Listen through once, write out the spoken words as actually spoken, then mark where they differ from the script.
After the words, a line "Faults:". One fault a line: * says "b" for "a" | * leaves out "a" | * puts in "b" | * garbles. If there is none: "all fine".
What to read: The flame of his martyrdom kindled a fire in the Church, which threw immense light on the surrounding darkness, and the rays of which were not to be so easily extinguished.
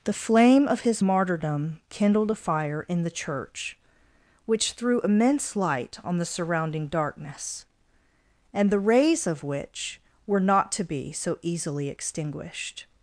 The flame of his martyrdom kindled a fire in the Church, which threw immense light on the surrounding darkness, and the rays of which were not to be so easily extinguished.
Faults:
all fine